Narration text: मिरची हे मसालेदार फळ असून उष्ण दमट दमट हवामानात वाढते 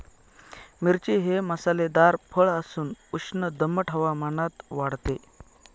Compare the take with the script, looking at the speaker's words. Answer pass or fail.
fail